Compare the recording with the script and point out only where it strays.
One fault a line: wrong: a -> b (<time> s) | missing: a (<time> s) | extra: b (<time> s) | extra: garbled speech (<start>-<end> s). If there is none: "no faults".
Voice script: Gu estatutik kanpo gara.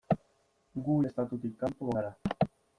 no faults